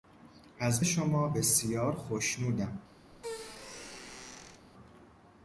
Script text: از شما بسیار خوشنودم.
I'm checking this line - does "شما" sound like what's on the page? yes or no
yes